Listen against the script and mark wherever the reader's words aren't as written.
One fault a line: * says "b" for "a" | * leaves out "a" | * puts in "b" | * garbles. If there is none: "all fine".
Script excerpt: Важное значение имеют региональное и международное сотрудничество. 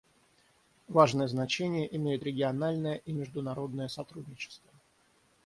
all fine